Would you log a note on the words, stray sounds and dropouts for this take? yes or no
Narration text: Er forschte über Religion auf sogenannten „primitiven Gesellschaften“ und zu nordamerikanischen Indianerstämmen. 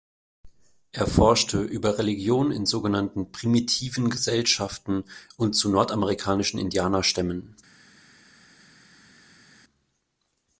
yes